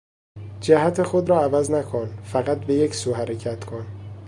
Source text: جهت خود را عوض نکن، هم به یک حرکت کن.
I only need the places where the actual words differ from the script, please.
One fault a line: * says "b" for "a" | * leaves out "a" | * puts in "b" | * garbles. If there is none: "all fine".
* says "فقط" for "هم"
* puts in "سو"